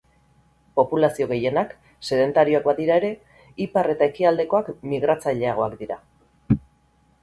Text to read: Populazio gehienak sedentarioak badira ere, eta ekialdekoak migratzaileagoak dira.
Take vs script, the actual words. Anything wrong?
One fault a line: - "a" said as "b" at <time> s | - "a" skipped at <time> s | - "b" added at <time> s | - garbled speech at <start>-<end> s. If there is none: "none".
- "ipar" added at 3.7 s